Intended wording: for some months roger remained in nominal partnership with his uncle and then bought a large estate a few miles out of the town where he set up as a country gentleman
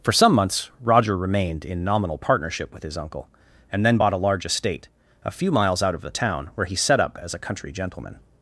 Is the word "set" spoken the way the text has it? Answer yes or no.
yes